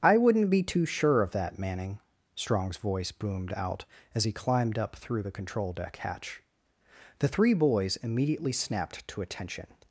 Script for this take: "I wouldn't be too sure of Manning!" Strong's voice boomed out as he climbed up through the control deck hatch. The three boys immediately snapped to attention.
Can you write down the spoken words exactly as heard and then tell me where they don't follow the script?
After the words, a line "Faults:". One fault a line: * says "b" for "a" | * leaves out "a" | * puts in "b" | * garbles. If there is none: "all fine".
"I wouldn't be too sure of that, Manning!" Strong's voice boomed out as he climbed up through the control deck hatch. The three boys immediately snapped to attention.
Faults:
* puts in "that"